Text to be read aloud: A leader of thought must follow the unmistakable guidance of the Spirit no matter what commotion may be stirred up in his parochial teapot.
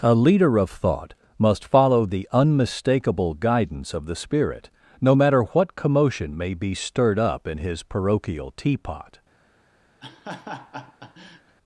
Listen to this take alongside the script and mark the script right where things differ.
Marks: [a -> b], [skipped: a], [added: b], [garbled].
A leader of thought must follow the unmistakable guidance of the Spirit no matter what commotion may be stirred up in his parochial teapot.